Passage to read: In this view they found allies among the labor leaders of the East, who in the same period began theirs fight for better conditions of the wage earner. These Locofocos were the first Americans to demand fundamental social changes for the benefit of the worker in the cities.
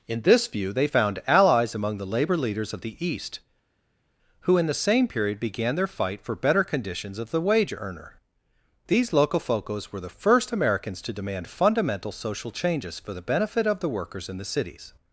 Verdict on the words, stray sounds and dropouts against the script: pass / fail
fail